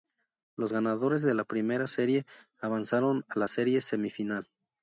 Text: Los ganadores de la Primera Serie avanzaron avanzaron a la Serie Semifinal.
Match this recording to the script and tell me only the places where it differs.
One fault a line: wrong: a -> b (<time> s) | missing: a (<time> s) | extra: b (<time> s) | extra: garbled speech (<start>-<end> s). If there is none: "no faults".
missing: avanzaron (3.2 s)